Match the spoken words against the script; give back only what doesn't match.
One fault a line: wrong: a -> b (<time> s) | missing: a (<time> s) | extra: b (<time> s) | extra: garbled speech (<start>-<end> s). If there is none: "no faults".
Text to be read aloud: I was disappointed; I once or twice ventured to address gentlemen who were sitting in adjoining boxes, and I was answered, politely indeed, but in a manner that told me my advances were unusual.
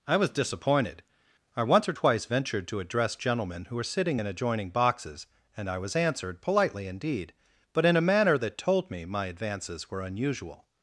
no faults